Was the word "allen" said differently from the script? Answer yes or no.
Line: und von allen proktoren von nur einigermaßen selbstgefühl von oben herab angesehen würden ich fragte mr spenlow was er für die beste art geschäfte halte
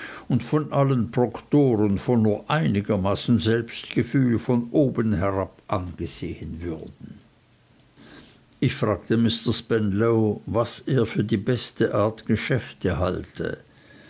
no